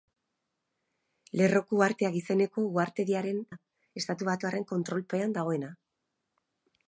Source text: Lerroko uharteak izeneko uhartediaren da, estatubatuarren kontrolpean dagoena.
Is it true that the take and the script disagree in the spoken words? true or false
false